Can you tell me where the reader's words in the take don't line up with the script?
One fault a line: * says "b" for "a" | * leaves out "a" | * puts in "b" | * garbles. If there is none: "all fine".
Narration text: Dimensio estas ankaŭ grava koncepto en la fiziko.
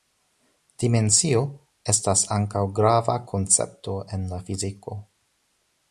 all fine